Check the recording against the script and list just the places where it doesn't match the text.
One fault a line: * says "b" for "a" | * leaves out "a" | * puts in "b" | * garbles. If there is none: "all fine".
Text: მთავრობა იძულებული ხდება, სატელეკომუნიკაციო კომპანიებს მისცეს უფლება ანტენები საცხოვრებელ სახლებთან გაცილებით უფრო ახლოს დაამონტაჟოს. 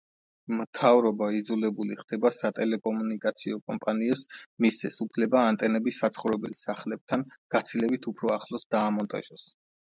all fine